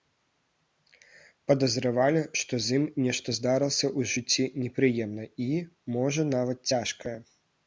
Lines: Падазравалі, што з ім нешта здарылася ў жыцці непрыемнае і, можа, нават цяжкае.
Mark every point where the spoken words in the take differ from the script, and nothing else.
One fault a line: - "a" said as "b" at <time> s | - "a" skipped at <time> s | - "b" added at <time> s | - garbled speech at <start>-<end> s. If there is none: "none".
none